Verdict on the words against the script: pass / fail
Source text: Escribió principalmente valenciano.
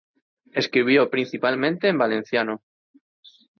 fail